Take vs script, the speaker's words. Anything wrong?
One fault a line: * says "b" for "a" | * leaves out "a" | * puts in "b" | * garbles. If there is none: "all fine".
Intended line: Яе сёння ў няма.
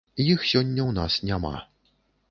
* says "Іх" for "Яе"
* puts in "нас"